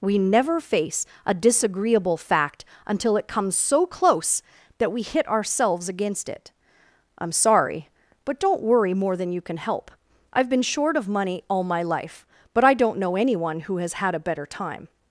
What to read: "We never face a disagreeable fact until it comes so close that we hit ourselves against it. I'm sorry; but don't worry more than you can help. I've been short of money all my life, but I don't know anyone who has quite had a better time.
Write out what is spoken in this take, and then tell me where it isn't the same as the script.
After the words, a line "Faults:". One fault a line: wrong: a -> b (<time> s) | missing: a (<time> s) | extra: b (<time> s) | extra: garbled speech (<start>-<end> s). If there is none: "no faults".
"We never face a disagreeable fact until it comes so close that we hit ourselves against it. I'm sorry; but don't worry more than you can help. I've been short of money all my life, but I don't know anyone who has had a better time.
Faults:
missing: quite (13.9 s)